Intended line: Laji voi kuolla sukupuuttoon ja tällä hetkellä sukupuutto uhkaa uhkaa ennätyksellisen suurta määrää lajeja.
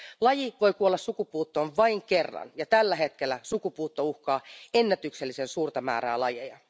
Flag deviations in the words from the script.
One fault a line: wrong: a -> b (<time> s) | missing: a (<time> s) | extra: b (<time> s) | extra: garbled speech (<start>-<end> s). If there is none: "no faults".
extra: vain kerran (1.8 s)
missing: uhkaa (4.4 s)